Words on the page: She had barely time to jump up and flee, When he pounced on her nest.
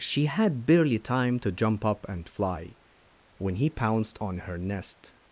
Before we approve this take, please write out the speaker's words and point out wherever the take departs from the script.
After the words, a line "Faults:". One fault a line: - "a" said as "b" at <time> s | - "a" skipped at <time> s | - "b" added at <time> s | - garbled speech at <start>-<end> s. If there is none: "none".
She had barely time to jump up and fly, When he pounced on her nest.
Faults:
- "flee" said as "fly" at 2.3 s